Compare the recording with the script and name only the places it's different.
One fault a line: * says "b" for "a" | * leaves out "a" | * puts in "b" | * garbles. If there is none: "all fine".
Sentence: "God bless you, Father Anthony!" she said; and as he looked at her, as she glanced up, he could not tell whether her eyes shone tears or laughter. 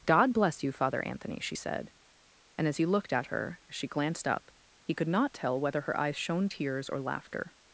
all fine